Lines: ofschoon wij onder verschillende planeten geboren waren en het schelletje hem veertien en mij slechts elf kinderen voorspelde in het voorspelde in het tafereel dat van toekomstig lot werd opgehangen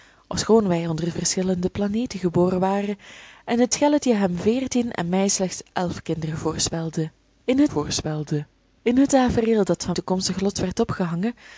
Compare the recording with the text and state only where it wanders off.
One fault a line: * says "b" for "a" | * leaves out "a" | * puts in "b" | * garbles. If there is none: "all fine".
all fine